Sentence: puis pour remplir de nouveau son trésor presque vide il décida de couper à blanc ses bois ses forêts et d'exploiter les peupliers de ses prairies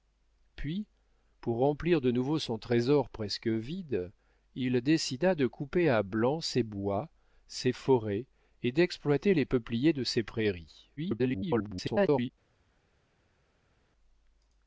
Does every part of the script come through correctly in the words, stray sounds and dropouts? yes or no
no